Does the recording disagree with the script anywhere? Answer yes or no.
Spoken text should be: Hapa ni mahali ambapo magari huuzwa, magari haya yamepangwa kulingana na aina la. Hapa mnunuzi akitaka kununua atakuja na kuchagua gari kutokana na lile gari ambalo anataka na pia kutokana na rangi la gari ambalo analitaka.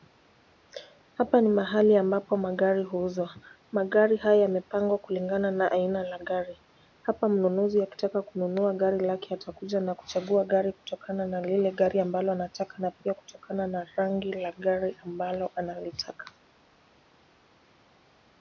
yes